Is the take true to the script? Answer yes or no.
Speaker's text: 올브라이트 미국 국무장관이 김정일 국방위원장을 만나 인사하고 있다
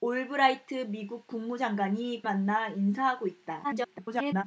no